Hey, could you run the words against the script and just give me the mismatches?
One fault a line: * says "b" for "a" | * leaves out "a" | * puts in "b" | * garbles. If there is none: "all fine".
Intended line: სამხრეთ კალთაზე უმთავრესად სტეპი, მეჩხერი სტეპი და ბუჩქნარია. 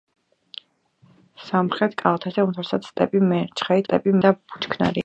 all fine